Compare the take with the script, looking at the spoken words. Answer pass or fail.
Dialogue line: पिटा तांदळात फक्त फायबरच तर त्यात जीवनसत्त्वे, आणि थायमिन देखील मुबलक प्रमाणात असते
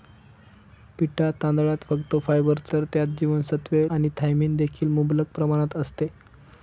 pass